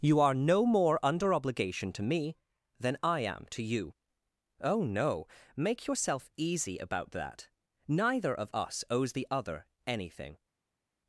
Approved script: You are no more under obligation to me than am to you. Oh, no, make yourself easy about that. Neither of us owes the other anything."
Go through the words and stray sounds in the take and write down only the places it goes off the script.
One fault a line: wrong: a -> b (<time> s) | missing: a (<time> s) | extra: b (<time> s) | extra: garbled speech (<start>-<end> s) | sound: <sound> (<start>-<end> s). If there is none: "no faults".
extra: I (3.0 s)